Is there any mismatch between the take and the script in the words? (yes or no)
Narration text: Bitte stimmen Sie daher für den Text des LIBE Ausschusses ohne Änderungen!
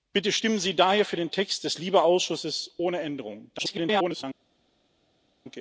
yes